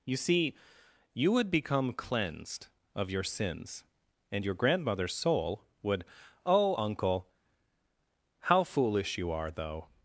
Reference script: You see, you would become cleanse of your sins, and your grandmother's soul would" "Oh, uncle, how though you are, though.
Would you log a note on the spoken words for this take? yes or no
yes